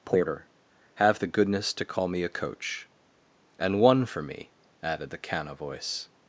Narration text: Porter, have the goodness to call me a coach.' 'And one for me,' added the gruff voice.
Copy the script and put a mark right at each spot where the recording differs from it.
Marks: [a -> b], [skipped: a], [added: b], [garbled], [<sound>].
Porter, have the goodness to call me a coach.' 'And one for me,' added the [gruff -> canna] voice.